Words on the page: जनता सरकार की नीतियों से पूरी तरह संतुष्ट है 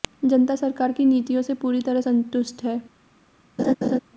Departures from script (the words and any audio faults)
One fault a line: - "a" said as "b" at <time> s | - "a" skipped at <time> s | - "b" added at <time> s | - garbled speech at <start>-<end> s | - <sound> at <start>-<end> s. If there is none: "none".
- laugh at 3.6-4.0 s